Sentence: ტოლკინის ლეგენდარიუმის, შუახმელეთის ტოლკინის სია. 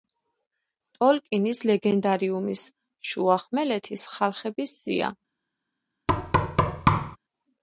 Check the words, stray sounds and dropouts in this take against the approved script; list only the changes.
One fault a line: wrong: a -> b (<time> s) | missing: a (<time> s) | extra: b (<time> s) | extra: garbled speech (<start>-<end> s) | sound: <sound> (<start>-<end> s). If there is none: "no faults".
wrong: ტოლკინის -> ხალხების (4.2 s)
sound: thud (6.1-7.2 s)